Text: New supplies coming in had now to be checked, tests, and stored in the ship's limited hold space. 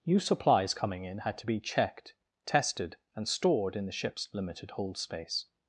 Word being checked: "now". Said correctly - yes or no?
no